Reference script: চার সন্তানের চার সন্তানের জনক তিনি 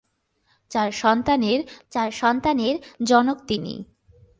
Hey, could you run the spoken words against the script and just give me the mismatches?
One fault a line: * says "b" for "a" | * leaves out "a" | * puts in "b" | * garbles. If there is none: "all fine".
all fine